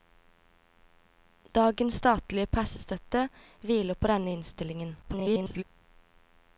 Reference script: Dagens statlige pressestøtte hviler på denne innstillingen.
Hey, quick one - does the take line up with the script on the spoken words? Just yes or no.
no